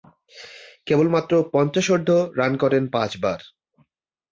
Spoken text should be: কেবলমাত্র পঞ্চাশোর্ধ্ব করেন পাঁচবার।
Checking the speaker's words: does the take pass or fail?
fail